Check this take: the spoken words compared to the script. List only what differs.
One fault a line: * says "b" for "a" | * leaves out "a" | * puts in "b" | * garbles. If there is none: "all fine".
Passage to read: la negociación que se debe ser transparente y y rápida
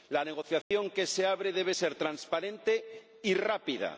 * puts in "abre"
* leaves out "y"